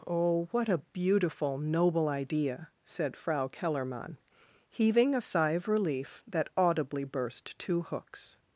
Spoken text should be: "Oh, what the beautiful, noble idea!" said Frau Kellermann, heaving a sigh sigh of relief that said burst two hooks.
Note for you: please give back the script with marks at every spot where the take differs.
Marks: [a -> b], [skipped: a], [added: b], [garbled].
"Oh, what [the -> a] beautiful, noble idea!" said Frau Kellermann, heaving a sigh [skipped: sigh] of relief that [said -> audibly] burst two hooks.